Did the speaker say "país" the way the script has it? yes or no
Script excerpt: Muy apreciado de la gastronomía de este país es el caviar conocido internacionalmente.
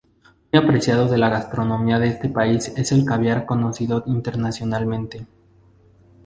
yes